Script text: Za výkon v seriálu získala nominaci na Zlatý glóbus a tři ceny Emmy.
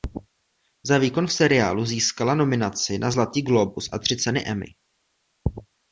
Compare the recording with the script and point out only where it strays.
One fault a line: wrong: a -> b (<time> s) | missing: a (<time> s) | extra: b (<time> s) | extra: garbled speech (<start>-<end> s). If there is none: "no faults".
no faults